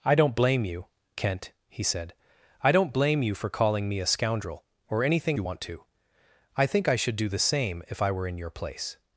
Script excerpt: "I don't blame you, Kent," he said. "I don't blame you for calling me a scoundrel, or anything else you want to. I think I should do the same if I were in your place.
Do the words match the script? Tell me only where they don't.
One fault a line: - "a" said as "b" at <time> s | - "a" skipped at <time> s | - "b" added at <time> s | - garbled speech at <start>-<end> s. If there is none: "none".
- "else" skipped at 5.4 s